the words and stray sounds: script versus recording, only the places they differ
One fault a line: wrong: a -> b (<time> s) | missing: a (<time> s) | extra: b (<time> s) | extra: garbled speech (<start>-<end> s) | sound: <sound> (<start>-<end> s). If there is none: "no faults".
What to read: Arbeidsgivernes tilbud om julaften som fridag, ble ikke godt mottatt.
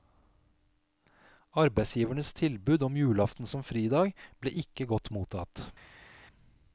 no faults